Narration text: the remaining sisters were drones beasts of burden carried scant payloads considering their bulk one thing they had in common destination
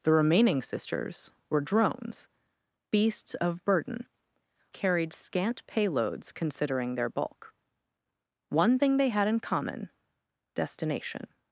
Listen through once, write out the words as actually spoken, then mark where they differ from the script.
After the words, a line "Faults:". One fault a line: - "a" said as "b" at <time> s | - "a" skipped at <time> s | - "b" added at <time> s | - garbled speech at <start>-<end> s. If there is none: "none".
the remaining sisters were drones beasts of burden carried scant payloads considering their bulk one thing they had in common destination
Faults:
none